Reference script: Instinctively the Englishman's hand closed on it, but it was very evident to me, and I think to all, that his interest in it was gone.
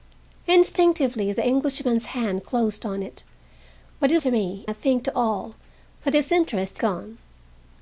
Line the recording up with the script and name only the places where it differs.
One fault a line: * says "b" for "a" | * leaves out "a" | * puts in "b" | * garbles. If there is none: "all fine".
* leaves out "was very evident"
* leaves out "and"
* leaves out "in it was"